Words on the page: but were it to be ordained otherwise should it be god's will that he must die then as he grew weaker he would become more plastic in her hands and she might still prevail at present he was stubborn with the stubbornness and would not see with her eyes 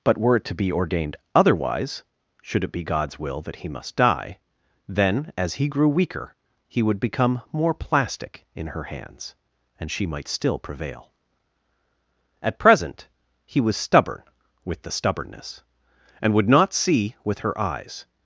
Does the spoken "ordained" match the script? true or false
true